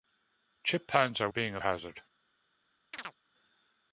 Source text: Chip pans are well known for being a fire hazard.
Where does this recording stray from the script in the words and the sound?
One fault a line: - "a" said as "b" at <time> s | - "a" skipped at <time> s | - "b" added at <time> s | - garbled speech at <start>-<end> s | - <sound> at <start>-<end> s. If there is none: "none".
- "well known for" skipped at 1.3 s
- "fire" skipped at 1.6 s
- chirp at 2.9-3.2 s